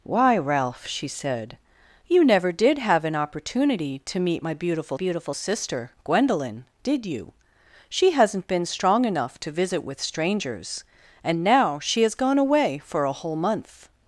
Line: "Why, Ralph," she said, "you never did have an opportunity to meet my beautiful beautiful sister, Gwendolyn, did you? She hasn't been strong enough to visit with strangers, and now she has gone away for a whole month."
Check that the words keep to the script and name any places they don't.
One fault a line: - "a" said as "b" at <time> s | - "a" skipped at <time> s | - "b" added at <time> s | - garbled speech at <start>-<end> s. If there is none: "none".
none